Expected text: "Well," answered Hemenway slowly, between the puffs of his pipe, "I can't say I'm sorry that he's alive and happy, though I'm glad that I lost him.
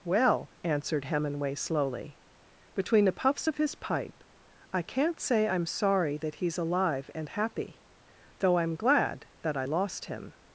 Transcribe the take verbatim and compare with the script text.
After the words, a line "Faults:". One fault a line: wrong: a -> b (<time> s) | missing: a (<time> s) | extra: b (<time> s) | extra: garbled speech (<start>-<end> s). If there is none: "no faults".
"Well," answered Hemenway slowly, between the puffs of his pipe, "I can't say I'm sorry that he's alive and happy, though I'm glad that I lost him.
Faults:
no faults